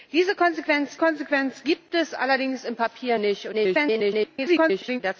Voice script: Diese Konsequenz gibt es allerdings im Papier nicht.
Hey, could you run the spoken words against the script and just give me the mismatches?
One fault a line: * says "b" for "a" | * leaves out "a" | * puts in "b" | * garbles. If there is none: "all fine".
* puts in "Konsequenz"
* garbles